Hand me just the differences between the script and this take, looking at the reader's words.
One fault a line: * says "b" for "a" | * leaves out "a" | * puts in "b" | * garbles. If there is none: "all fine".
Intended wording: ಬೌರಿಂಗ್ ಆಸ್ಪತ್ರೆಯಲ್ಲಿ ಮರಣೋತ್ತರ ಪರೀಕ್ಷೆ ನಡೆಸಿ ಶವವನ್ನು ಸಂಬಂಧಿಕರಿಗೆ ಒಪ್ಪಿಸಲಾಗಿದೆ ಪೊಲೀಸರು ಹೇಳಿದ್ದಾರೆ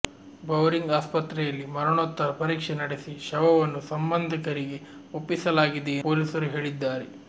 all fine